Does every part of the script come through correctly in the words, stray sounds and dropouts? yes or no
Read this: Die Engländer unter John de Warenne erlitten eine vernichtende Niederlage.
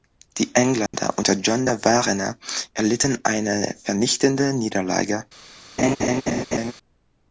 no